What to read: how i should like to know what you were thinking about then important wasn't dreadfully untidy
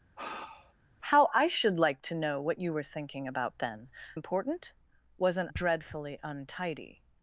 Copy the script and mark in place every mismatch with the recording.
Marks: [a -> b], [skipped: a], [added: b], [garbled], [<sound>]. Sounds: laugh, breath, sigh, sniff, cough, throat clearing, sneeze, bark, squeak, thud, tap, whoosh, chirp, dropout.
[sigh] how i should like to know what you were thinking about then important wasn't dreadfully untidy